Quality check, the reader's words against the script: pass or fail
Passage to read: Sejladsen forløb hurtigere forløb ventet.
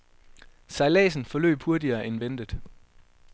fail